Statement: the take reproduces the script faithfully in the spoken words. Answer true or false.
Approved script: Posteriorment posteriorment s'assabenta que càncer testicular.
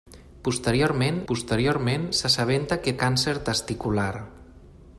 true